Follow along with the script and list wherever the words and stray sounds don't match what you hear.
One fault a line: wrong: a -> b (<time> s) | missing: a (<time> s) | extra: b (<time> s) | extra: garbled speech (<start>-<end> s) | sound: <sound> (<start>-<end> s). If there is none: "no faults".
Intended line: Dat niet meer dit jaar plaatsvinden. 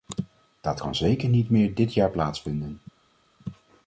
extra: kan zeker (0.8 s)